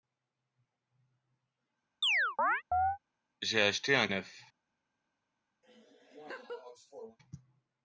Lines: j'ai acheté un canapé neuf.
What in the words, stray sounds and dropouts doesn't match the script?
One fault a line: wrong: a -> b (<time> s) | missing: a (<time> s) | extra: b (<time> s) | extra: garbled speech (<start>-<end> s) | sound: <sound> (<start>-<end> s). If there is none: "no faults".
sound: chirp (2.0-3.0 s)
missing: canapé (4.1 s)
sound: laugh (5.6-7.2 s)